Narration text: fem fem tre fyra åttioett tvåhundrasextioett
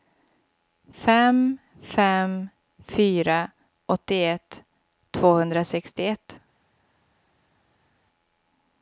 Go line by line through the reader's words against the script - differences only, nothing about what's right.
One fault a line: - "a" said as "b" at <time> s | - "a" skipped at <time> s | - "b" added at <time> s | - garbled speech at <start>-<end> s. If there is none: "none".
- "tre" skipped at 2.5 s